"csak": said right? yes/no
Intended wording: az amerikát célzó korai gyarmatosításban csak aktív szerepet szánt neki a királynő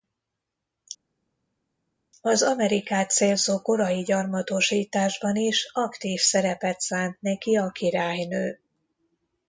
no